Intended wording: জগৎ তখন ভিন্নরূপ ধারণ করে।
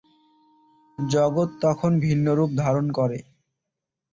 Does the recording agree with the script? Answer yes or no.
yes